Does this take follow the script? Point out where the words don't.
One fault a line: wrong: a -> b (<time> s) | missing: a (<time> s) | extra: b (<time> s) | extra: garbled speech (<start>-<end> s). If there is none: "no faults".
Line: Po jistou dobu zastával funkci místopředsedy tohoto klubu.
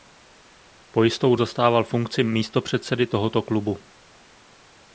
missing: dobu (1.4 s)